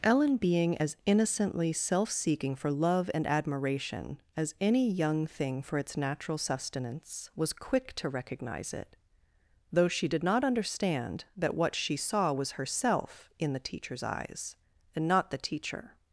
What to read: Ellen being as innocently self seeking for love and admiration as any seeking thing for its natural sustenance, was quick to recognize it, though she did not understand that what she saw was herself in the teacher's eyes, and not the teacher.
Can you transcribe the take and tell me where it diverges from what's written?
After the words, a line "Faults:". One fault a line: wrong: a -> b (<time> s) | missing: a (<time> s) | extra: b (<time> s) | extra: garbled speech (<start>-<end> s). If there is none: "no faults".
Ellen being as innocently self seeking for love and admiration as any young thing for its natural sustenance, was quick to recognize it, though she did not understand that what she saw was herself in the teacher's eyes, and not the teacher.
Faults:
wrong: seeking -> young (4.9 s)